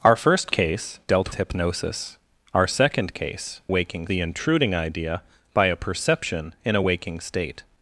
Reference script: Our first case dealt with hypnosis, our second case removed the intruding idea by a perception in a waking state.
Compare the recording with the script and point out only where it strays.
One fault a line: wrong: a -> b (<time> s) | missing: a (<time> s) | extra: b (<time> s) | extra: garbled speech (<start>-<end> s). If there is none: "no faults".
missing: with (1.3 s)
wrong: removed -> waking (3.7 s)